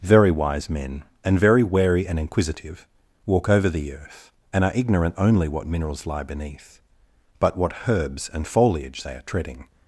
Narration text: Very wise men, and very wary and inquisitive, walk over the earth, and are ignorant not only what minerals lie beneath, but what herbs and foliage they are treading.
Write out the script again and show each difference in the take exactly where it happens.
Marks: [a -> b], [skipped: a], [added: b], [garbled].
Very wise men, and very wary and inquisitive, walk over the earth, and are ignorant [skipped: not] only what minerals lie beneath, but what herbs and foliage they are treading.